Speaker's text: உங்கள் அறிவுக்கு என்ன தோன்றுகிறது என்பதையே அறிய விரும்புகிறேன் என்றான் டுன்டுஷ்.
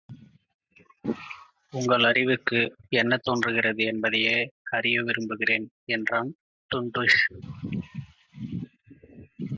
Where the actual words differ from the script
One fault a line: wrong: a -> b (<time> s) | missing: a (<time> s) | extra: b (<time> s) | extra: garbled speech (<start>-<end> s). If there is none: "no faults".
no faults